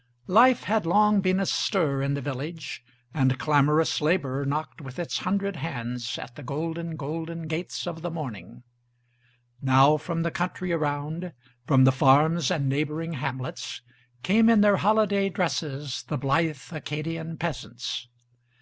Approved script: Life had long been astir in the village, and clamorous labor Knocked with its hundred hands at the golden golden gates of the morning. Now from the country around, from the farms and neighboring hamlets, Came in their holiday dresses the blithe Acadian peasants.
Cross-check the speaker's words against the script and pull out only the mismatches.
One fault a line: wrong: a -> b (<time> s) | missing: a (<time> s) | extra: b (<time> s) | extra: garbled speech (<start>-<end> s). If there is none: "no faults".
no faults